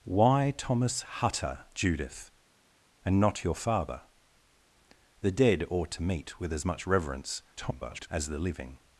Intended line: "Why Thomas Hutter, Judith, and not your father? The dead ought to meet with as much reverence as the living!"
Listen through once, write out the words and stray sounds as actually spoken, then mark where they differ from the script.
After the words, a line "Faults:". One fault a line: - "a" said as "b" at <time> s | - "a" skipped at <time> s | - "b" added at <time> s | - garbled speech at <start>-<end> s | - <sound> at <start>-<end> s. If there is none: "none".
"Why Thomas Hutter, Judith, and not your father? The dead ought to meet with as much reverence [garbled] as the living!"
Faults:
- garbled speech at 7.6-8.1 s